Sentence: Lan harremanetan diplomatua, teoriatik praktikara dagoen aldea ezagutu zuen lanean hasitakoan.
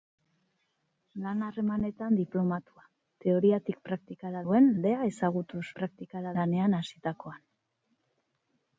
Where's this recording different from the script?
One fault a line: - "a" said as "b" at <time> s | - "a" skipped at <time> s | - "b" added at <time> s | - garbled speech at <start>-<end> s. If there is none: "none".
- "dagoen" said as "zuen" at 4.4 s
- "zuen" said as "praktikara" at 5.8 s